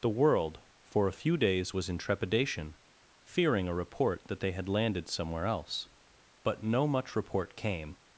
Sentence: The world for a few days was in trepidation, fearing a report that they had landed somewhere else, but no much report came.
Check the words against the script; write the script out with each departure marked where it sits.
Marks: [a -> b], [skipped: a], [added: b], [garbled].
The world for a few days was in trepidation, fearing a report that they had landed somewhere else, but no much report came.